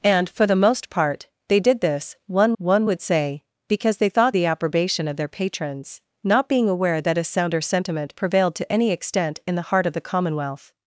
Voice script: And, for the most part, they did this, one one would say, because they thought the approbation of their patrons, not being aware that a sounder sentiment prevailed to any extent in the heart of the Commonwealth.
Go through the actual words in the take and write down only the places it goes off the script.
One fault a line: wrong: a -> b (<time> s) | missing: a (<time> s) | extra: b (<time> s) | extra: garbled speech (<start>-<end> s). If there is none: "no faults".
no faults